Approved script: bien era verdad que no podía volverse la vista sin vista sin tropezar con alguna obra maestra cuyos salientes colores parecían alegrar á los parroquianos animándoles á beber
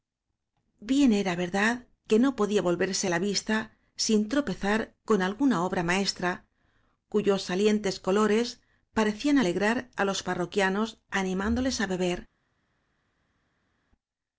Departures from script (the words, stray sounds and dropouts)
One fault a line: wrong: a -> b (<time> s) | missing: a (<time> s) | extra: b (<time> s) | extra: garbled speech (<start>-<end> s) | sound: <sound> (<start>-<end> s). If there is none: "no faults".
missing: vista sin (4.3 s)